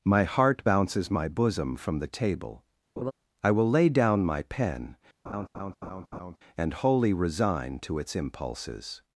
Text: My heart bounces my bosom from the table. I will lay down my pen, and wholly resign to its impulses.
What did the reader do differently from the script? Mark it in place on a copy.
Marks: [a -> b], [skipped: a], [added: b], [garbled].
My heart bounces my bosom from the table. I will lay down my pen, and wholly resign to its impulses.